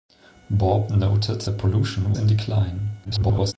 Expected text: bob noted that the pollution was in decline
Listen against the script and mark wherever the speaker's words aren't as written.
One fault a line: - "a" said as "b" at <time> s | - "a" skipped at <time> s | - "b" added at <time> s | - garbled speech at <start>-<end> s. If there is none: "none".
- "that" skipped at 1.4 s
- "was" skipped at 2.1 s
- garbled speech at 3.0-3.5 s